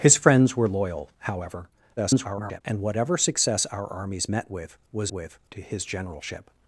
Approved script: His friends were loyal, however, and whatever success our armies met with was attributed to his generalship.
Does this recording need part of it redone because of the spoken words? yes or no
yes